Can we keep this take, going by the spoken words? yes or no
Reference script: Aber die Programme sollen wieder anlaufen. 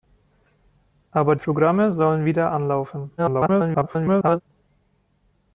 no